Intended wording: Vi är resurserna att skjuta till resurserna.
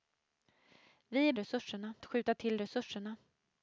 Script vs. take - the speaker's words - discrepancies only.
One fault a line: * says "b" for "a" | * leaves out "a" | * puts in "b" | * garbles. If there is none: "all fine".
all fine